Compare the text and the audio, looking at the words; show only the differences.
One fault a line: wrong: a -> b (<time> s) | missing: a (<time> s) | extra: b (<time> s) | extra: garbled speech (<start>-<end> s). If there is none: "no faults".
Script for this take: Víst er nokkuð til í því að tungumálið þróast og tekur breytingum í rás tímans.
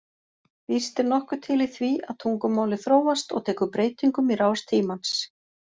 no faults